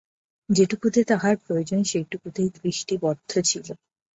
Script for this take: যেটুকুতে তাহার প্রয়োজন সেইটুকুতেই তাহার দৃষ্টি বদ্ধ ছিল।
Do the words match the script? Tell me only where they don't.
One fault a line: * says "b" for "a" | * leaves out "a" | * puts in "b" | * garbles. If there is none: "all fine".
* leaves out "তাহার"